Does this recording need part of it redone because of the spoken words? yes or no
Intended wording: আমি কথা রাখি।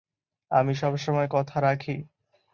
yes